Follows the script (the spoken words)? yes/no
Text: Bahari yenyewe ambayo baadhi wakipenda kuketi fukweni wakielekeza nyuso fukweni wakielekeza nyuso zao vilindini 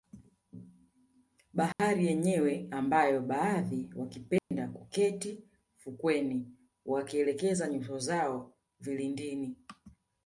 no